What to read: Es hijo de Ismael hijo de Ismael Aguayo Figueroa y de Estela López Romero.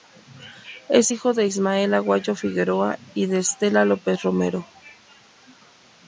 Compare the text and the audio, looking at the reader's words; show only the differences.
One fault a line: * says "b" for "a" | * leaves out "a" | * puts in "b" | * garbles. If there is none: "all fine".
* leaves out "hijo de Ismael"